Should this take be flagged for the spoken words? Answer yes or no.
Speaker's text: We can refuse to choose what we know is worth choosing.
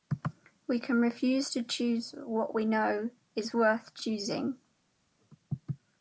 no